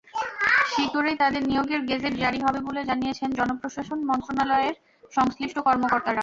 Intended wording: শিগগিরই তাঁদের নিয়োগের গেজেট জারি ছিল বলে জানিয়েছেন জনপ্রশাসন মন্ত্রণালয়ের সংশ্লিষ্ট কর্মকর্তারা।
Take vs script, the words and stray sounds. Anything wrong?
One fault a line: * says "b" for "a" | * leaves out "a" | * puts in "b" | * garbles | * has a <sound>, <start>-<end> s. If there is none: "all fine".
* says "হবে" for "ছিল"